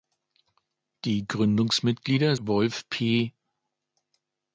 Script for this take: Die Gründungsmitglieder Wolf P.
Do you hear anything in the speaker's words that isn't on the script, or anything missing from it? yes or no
no